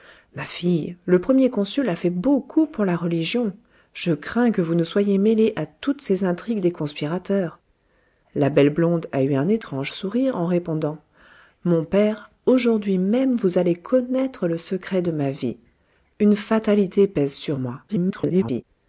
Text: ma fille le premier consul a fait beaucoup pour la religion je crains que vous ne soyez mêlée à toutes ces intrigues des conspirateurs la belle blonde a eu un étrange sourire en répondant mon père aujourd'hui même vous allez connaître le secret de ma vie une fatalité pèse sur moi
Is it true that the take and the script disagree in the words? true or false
true